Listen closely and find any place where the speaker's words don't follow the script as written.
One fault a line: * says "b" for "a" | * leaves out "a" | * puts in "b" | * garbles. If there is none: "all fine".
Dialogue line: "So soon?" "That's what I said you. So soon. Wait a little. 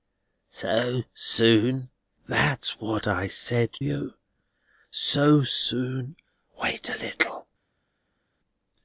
all fine